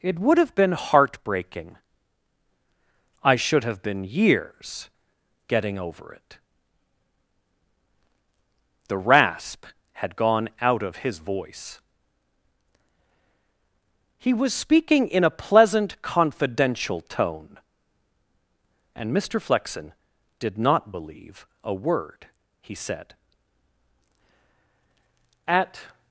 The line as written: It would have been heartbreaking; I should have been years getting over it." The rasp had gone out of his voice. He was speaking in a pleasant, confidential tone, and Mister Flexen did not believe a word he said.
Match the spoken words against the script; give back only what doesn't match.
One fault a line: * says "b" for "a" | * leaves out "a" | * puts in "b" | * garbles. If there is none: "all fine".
* puts in "At"